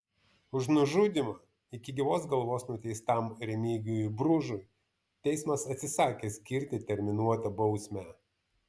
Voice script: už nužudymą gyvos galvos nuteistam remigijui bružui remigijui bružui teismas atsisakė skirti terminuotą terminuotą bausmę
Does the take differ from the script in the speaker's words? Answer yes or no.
yes